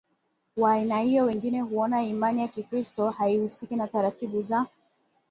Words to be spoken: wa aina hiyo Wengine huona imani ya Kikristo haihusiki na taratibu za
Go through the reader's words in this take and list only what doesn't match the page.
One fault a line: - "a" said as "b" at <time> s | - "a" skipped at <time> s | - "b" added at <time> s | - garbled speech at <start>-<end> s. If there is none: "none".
none